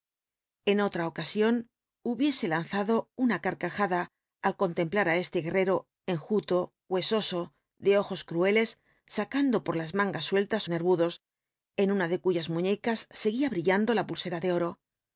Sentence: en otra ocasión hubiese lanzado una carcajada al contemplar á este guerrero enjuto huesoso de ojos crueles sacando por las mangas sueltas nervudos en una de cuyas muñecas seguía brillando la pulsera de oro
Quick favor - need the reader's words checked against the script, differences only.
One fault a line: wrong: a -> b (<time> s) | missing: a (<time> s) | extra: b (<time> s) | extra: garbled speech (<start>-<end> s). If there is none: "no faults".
no faults